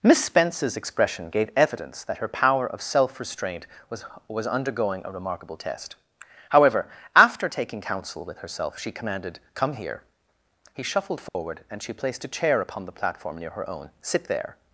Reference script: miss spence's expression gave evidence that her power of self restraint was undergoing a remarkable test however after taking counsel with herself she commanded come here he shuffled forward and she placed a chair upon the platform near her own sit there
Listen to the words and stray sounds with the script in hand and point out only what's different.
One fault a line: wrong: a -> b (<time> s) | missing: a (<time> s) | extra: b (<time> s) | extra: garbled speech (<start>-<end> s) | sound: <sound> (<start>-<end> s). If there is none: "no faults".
extra: was (4.3 s)
sound: dropout (11.3-11.4 s)